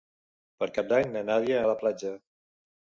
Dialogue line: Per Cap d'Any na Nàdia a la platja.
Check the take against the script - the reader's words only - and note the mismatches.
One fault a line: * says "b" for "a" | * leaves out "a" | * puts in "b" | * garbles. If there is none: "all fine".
all fine